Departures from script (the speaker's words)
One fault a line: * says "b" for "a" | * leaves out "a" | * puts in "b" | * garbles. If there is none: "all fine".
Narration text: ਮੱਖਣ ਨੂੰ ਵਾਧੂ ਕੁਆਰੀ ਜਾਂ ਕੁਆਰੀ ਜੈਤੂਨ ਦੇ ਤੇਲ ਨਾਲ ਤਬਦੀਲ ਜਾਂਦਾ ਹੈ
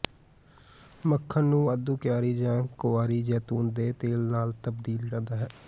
all fine